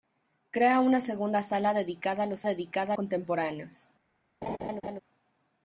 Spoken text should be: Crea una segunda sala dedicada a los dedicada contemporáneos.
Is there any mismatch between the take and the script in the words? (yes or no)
no